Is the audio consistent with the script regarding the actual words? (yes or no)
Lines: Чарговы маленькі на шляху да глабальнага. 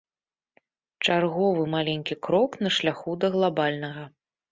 no